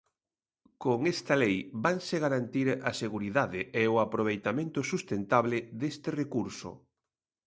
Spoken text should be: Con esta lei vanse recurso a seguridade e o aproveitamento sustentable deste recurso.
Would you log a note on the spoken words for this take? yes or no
yes